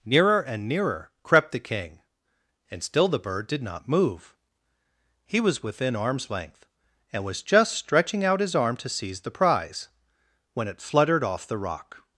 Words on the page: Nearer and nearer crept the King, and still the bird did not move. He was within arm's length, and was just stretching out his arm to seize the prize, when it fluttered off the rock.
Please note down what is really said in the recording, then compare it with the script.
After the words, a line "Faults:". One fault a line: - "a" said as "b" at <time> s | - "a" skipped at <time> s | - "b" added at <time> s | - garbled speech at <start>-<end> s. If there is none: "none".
Nearer and nearer crept the King, and still the bird did not move. He was within arm's length, and was just stretching out his arm to seize the prize, when it fluttered off the rock.
Faults:
none